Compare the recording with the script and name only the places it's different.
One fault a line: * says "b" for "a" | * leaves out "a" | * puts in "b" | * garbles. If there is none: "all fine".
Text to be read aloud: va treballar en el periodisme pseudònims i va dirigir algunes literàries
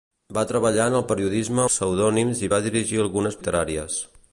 all fine